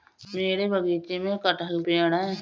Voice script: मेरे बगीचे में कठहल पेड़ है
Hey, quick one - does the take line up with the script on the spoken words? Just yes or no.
yes